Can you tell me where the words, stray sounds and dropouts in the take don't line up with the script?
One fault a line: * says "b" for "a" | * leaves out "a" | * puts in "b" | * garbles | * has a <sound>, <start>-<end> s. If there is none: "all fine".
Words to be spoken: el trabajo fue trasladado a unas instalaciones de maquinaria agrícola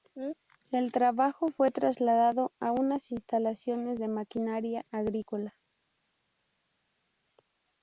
all fine